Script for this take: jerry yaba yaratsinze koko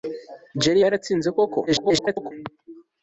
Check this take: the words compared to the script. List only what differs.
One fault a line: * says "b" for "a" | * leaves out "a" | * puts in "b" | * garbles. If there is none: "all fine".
* leaves out "yaba"
* garbles